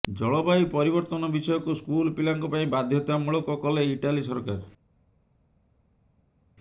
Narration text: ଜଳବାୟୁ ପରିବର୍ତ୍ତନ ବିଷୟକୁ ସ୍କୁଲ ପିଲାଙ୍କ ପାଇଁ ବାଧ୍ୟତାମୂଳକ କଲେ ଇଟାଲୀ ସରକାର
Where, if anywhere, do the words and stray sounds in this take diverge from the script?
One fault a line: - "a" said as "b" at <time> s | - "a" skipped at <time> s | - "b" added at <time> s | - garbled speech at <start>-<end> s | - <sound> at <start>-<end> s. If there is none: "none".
none